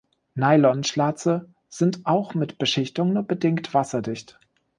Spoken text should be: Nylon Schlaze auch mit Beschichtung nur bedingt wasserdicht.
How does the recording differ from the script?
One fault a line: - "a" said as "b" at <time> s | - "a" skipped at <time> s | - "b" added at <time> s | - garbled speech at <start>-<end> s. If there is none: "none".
- "sind" added at 1.7 s